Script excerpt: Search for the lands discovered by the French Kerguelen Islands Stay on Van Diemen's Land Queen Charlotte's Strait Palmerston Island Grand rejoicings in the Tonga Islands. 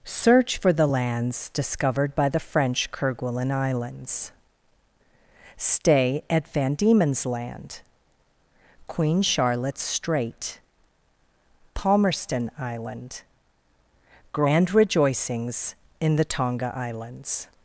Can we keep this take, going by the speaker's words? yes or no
no